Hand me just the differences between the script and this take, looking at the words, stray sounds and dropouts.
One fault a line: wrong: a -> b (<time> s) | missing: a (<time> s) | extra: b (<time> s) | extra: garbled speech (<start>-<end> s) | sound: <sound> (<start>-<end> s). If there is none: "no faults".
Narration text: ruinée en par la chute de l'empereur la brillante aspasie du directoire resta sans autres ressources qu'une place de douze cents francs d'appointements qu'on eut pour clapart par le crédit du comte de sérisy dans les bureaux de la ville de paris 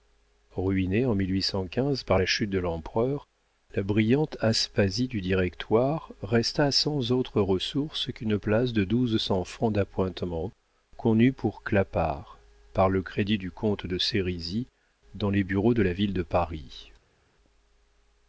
no faults